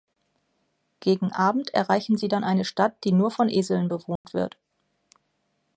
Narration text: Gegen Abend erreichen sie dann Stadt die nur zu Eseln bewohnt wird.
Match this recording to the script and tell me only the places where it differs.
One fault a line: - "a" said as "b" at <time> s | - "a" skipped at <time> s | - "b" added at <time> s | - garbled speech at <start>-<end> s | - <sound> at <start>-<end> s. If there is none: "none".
- "eine" added at 2.4 s
- "zu" said as "von" at 3.3 s
- dropout at 4.2-4.2 s